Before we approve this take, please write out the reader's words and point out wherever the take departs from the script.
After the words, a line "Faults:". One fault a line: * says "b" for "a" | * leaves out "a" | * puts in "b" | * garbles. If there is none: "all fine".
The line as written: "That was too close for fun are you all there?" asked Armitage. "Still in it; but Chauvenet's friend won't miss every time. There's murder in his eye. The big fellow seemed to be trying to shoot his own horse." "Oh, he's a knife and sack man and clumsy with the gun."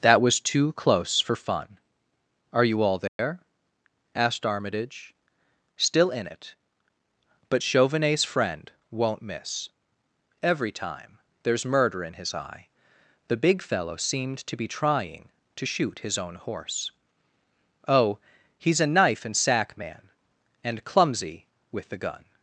"That was too close for fun are you all there?" asked Armitage. "Still in it; but Chauvenet's friend won't miss every time. There's murder in his eye. The big fellow seemed to be trying to shoot his own horse." "Oh, he's a knife and sack man and clumsy with the gun."
Faults:
all fine